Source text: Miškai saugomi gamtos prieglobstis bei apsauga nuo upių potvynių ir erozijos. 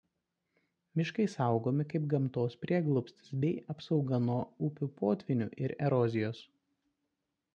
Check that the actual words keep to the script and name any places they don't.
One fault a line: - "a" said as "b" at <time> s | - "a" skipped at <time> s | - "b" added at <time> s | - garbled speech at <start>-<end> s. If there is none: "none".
- "kaip" added at 1.9 s